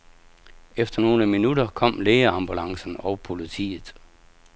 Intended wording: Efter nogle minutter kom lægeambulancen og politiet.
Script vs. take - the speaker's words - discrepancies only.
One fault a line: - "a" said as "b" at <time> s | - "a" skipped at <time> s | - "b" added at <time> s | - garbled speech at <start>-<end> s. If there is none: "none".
none